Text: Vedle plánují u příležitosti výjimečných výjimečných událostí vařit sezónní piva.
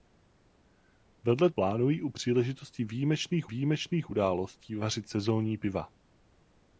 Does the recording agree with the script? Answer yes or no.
yes